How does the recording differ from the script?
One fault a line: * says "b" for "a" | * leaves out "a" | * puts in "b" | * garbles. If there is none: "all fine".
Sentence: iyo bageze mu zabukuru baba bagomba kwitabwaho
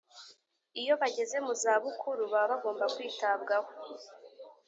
all fine